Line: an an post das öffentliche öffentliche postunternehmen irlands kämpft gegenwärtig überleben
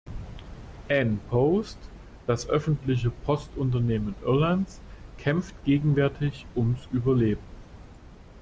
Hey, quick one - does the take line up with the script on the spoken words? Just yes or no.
no